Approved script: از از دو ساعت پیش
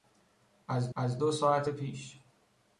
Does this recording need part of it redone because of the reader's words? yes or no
no